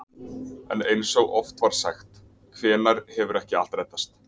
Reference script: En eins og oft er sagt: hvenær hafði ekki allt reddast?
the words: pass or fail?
fail